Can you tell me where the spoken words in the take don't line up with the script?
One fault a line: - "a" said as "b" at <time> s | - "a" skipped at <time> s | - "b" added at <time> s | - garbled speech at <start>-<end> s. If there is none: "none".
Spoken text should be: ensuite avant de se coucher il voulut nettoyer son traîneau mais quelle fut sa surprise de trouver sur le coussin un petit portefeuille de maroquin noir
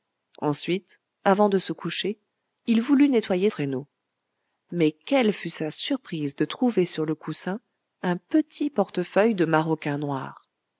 - "son" skipped at 3.5 s